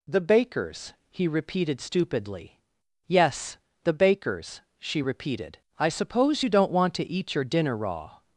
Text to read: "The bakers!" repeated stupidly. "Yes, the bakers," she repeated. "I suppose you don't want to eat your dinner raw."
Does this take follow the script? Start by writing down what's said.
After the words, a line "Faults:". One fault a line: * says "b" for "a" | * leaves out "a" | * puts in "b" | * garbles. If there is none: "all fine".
"The bakers!" he repeated stupidly. "Yes, the bakers," she repeated. "I suppose you don't want to eat your dinner raw."
Faults:
* puts in "he"